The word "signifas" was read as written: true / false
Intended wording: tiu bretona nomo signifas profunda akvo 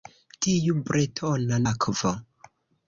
false